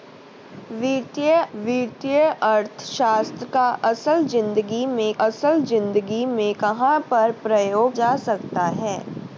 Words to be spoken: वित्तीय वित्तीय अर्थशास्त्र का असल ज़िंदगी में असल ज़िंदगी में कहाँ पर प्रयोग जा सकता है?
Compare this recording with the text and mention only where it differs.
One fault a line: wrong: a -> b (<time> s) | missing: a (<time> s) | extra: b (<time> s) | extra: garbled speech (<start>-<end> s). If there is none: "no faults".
no faults